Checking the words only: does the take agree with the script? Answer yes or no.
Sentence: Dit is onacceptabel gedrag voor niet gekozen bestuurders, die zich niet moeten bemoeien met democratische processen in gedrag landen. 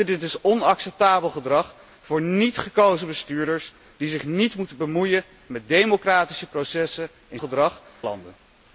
yes